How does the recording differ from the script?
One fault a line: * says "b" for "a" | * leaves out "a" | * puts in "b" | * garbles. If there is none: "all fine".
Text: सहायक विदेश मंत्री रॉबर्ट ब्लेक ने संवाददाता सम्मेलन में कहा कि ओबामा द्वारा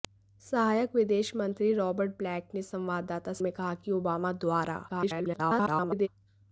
* leaves out "सम्मेलन"
* garbles